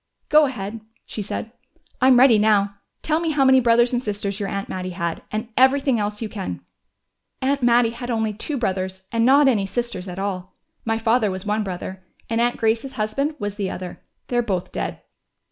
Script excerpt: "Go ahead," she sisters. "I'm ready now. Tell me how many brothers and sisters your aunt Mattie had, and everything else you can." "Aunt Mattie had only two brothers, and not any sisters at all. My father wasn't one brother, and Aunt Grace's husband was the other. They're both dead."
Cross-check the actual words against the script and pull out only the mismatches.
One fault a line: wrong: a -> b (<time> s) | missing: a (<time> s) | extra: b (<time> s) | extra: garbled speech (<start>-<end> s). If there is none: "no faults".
wrong: sisters -> said (1.2 s)
wrong: wasn't -> was (11.3 s)